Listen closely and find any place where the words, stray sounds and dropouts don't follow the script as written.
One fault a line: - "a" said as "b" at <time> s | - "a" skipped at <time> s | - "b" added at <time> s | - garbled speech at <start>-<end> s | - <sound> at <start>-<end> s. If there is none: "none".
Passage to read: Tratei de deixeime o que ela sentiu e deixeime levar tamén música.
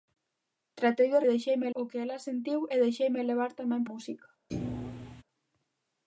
- thud at 4.5-5.2 s